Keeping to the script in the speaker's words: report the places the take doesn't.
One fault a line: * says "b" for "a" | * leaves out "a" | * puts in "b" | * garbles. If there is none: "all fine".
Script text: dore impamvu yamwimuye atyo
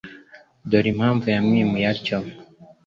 all fine